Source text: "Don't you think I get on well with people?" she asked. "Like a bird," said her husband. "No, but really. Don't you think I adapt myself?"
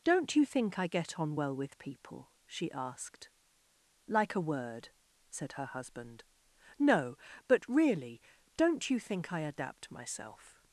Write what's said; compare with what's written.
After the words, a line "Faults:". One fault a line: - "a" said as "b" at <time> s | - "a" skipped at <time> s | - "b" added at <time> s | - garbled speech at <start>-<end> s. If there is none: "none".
"Don't you think I get on well with people?" she asked. "Like a word," said her husband. "No, but really. Don't you think I adapt myself?"
Faults:
- "bird" said as "word" at 4.4 s